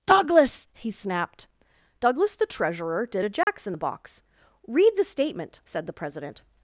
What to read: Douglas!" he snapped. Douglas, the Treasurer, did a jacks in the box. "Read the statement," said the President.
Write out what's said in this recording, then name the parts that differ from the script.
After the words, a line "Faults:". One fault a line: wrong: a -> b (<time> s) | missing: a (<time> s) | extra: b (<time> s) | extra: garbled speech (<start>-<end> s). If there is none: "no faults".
Douglas!" he snapped. Douglas, the Treasurer, did a jacks in the box. "Read the statement," said the President.
Faults:
no faults